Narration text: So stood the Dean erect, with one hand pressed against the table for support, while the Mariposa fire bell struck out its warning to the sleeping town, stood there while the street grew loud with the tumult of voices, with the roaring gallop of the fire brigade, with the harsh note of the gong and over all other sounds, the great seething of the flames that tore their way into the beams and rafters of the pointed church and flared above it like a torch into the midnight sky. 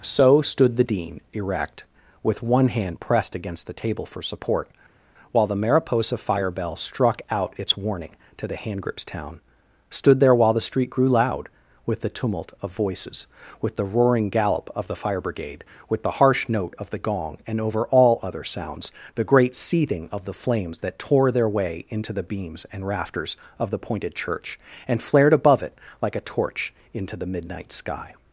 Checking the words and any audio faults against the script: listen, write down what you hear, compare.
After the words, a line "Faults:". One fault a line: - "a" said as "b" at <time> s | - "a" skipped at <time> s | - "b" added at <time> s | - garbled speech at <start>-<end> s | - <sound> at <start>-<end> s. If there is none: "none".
So stood the Dean erect, with one hand pressed against the table for support, while the Mariposa fire bell struck out its warning to the handgrips town, stood there while the street grew loud with the tumult of voices, with the roaring gallop of the fire brigade, with the harsh note of the gong and over all other sounds, the great seething of the flames that tore their way into the beams and rafters of the pointed church and flared above it like a torch into the midnight sky.
Faults:
- "sleeping" said as "handgrips" at 8.6 s